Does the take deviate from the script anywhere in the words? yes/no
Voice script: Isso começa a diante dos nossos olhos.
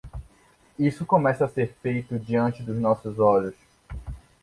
yes